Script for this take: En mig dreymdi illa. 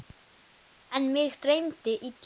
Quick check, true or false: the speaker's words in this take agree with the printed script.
true